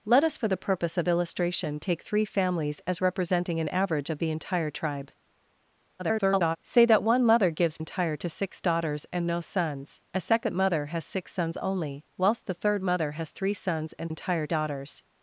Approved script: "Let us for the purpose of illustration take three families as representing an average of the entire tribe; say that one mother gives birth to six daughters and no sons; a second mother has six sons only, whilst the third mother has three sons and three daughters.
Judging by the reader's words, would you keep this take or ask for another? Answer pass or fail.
fail